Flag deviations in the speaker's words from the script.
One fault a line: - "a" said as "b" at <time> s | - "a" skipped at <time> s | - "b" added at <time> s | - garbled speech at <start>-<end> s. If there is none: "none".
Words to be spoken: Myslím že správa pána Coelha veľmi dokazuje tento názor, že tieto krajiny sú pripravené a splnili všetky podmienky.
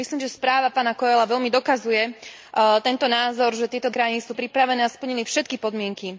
none